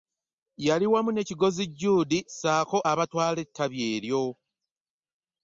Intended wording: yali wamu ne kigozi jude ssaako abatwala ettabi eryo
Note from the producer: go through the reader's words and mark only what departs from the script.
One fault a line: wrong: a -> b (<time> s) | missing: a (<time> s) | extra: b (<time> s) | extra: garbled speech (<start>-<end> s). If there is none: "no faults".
no faults